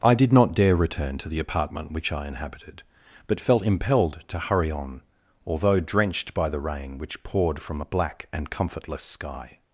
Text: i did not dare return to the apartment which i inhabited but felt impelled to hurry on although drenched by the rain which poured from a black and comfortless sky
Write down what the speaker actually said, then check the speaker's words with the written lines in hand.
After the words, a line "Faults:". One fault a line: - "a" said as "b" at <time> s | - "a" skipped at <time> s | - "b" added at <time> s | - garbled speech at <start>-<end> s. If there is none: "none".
i did not dare return to the apartment which i inhabited but felt impelled to hurry on although drenched by the rain which poured from a black and comfortless sky
Faults:
none